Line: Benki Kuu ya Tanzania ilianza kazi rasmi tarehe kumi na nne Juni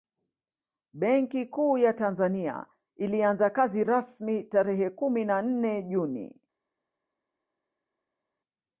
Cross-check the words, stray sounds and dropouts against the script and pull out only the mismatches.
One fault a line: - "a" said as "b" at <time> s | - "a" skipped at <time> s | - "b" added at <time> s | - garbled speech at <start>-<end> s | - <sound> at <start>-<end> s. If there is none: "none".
none